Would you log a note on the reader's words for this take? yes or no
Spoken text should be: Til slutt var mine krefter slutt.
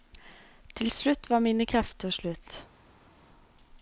no